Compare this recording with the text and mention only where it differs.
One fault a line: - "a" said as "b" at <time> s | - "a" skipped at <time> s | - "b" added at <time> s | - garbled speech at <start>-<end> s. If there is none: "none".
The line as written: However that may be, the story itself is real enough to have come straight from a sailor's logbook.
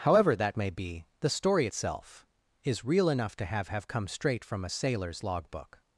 - "have" added at 3.7 s